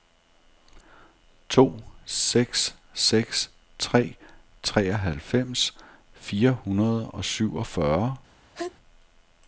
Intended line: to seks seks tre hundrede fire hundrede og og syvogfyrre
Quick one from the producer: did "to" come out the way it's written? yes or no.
yes